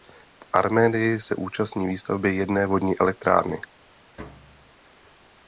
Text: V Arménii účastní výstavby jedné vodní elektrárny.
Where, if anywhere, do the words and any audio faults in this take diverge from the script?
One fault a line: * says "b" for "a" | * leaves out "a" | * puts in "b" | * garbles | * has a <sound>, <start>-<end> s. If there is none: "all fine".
* puts in "se"
* has a thud, 4.2-4.7 s